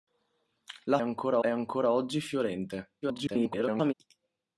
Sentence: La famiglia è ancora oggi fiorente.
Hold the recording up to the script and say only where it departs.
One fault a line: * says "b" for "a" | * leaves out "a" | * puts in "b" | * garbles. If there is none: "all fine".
* says "ancora" for "famiglia"
* garbles